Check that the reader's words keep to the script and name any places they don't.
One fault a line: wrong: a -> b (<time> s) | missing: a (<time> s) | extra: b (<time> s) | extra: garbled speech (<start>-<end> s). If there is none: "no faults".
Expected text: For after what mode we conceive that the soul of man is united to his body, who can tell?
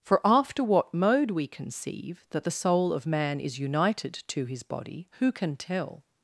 no faults